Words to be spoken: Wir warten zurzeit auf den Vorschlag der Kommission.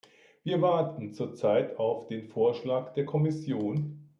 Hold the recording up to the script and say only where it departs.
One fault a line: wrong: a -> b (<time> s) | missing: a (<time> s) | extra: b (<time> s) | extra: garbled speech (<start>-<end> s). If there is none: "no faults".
no faults